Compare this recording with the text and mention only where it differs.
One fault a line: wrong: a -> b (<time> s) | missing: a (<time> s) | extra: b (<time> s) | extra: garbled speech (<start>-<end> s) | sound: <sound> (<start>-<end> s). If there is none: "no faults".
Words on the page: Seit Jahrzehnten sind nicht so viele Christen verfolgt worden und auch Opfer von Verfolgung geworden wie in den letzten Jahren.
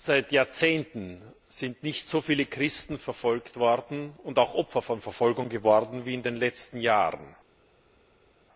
no faults